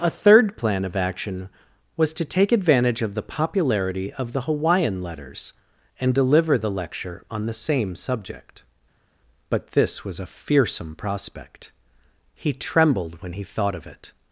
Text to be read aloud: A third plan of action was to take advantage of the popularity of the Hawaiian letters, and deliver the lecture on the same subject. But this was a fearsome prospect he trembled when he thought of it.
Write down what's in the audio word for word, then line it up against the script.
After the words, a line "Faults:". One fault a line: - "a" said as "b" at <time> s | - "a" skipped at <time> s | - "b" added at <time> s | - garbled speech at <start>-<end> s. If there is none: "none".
A third plan of action was to take advantage of the popularity of the Hawaiian letters, and deliver the lecture on the same subject. But this was a fearsome prospect he trembled when he thought of it.
Faults:
none